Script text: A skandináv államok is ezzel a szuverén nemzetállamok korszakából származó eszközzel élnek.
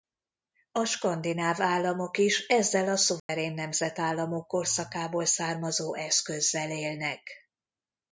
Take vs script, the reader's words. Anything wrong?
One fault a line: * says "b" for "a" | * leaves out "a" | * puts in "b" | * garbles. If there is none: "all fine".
all fine